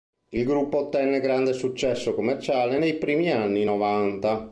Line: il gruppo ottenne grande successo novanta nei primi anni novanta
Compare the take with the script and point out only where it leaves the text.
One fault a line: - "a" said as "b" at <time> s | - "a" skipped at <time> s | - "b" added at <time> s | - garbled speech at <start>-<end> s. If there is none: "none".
- "novanta" said as "commerciale" at 2.1 s